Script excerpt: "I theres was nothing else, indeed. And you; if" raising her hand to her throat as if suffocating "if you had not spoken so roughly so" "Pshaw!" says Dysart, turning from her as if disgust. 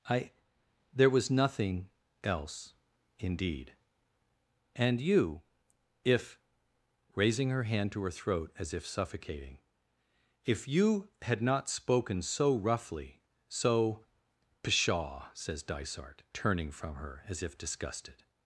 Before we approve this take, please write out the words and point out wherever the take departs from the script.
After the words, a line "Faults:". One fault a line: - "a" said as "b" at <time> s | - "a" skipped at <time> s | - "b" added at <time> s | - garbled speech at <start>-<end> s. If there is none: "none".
"I there was nothing else, indeed. And you; if" raising her hand to her throat as if suffocating "if you had not spoken so roughly so" "Pshaw!" says Dysart, turning from her as if disgusted.
Faults:
- "theres" said as "there" at 0.9 s
- "disgust" said as "disgusted" at 17.6 s